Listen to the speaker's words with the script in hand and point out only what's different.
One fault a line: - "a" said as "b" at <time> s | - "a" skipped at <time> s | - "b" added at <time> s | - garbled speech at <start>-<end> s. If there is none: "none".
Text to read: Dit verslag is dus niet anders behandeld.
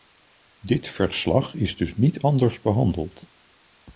none